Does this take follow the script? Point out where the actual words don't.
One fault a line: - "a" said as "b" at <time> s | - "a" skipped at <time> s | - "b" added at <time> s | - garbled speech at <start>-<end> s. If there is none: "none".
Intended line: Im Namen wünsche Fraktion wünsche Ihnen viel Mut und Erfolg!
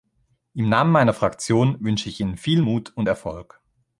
- "wünsche" said as "meiner" at 0.9 s
- "ich" added at 2.1 s